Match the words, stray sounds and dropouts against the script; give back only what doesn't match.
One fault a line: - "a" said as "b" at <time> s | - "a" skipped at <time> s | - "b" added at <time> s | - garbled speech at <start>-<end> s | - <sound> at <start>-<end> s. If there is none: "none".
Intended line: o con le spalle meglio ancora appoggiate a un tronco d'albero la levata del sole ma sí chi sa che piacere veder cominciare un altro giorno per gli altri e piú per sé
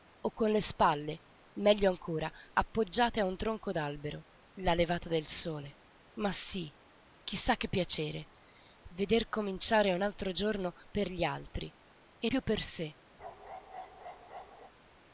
- bark at 13.2-14.7 s